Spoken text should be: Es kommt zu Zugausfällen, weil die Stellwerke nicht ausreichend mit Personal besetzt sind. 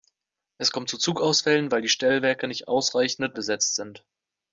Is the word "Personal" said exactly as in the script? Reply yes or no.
no